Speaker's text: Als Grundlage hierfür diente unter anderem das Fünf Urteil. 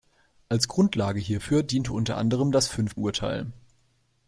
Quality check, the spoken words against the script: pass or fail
pass